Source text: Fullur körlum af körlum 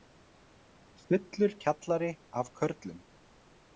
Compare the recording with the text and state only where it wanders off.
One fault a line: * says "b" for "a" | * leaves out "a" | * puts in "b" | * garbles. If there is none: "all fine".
* says "kjallari" for "körlum"